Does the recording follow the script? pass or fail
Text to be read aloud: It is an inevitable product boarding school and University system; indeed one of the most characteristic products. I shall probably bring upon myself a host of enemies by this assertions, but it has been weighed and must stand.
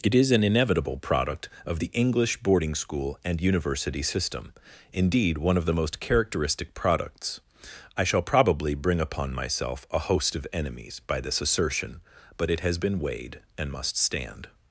fail